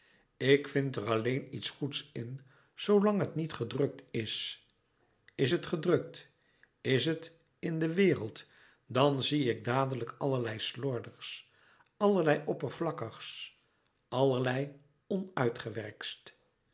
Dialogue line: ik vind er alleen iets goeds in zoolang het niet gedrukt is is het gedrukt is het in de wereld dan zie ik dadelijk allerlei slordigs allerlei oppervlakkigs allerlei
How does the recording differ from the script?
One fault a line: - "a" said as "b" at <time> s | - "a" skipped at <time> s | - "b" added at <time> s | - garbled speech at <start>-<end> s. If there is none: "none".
none